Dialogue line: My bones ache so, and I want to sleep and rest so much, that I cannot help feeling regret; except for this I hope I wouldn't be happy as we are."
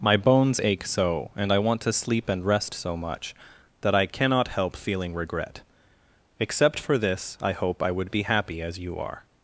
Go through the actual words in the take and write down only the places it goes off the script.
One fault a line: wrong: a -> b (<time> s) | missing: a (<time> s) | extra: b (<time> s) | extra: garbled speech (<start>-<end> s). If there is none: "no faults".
wrong: wouldn't -> would (7.9 s)
wrong: we -> you (8.8 s)